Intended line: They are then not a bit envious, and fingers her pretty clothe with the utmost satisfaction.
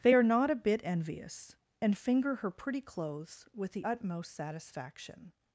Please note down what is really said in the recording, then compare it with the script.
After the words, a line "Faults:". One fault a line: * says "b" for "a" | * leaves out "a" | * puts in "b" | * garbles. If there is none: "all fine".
They are not a bit envious, and finger her pretty clothes with the utmost satisfaction.
Faults:
* leaves out "then"
* says "finger" for "fingers"
* says "clothes" for "clothe"